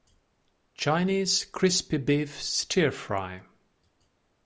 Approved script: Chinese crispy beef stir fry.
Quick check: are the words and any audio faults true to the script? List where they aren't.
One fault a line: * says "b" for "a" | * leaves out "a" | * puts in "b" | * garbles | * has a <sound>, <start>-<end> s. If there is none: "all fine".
all fine